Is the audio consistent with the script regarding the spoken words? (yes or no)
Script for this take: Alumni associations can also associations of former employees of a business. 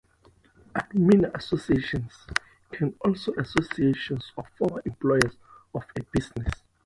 yes